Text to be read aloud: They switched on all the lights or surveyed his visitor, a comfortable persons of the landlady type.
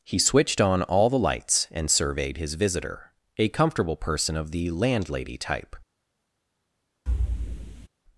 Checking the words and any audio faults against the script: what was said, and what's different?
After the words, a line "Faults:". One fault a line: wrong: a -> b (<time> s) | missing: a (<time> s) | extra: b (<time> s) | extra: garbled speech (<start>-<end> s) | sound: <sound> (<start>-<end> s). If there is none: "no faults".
He switched on all the lights and surveyed his visitor, a comfortable person of the landlady type.
Faults:
wrong: They -> He (0.0 s)
wrong: or -> and (1.7 s)
wrong: persons -> person (4.0 s)
sound: thud (7.1-7.9 s)